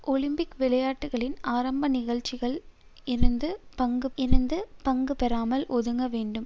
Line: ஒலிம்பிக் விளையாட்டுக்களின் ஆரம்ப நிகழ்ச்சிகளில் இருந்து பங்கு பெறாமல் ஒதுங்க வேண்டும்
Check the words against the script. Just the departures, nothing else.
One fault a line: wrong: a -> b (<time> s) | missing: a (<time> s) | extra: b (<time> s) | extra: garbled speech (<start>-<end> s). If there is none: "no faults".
extra: இருந்து பங்கு (4.2 s)